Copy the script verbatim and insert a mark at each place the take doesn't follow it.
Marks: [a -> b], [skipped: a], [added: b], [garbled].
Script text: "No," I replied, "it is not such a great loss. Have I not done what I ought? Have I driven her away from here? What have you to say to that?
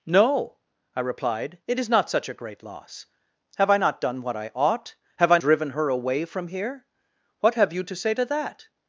"No," I replied, "it is not such a great loss. Have I not done what I ought? Have I driven her away from here? What have you to say to that?